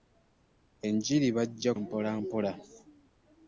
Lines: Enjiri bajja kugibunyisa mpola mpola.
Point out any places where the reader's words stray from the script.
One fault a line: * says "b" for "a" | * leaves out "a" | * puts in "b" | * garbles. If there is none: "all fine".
* leaves out "kugibunyisa"